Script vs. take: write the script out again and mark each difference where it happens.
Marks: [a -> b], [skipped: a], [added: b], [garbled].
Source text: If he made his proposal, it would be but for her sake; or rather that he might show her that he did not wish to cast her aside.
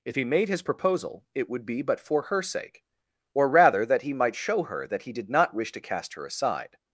If he made his proposal, it would be but for her sake; or rather that he might show her that he did not wish to cast her aside.